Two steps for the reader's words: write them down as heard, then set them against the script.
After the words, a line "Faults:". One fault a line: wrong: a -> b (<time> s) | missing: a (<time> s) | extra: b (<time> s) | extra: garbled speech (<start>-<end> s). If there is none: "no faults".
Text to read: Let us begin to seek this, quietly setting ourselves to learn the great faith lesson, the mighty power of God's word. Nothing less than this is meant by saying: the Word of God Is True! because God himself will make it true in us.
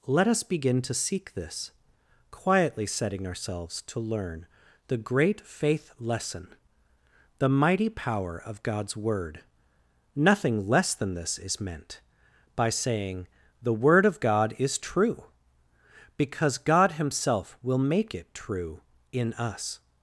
Let us begin to seek this, quietly setting ourselves to learn the great faith lesson, the mighty power of God's word. Nothing less than this is meant by saying: the Word of God Is True! because God himself will make it true in us.
Faults:
no faults